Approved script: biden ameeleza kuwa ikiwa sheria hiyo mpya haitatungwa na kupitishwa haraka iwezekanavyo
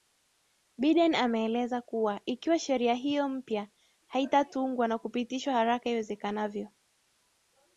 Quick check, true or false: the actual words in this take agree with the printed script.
true